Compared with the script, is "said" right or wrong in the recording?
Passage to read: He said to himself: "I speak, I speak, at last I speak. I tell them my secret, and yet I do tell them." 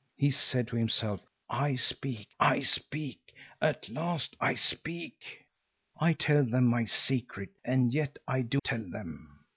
right